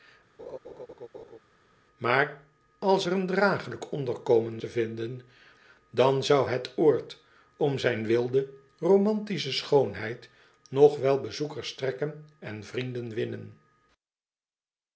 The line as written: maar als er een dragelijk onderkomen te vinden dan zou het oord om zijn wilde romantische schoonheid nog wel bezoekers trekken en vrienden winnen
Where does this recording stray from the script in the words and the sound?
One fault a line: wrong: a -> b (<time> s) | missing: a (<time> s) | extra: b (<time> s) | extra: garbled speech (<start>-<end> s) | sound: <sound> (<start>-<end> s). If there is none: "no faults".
sound: laugh (0.4-1.4 s)